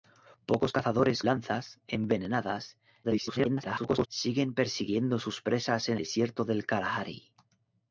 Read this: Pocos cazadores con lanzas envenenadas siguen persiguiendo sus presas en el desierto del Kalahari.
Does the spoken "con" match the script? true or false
false